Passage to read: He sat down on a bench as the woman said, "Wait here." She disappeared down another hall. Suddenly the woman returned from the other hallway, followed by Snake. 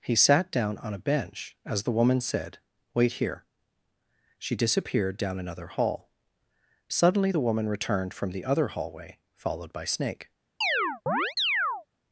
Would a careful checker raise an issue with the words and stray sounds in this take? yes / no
yes